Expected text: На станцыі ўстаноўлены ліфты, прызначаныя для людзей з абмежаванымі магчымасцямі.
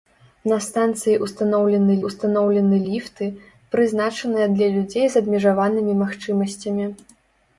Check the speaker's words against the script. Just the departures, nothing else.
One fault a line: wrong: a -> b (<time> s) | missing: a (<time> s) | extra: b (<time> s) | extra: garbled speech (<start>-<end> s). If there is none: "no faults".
extra: ўстаноўлены (2.1 s)